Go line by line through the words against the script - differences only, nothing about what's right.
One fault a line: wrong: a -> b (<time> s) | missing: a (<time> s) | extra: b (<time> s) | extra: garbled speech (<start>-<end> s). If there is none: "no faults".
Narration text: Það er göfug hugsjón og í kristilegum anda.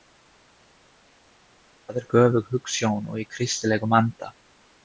no faults